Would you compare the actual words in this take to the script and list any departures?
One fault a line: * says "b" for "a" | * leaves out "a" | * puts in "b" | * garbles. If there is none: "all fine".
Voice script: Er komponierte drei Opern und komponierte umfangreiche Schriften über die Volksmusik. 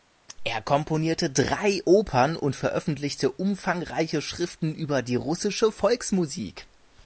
* says "veröffentlichte" for "komponierte"
* puts in "russische"